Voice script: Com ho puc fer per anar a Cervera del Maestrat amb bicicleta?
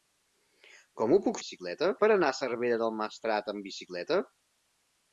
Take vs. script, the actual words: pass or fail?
fail